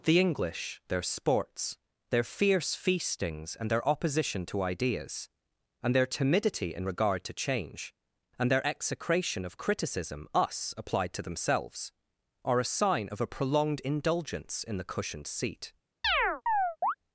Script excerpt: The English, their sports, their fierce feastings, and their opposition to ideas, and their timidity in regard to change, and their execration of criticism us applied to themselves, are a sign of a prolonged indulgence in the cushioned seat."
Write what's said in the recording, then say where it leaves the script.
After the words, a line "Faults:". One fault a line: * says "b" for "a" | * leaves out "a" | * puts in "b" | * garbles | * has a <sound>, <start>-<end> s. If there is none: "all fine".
The English, their sports, their fierce feastings, and their opposition to ideas, and their timidity in regard to change, and their execration of criticism us applied to themselves, are a sign of a prolonged indulgence in the cushioned seat."
Faults:
* has a chirp, 16.0-16.9 s